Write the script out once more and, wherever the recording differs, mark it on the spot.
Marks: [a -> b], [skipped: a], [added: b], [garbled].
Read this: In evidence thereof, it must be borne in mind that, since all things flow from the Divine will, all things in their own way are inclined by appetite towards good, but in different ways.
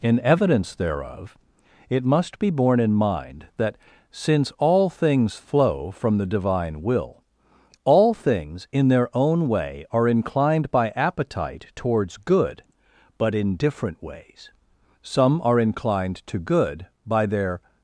In evidence thereof, it must be borne in mind that, since all things flow from the Divine will, all things in their own way are inclined by appetite towards good, but in different ways. [added: Some are inclined to good by their]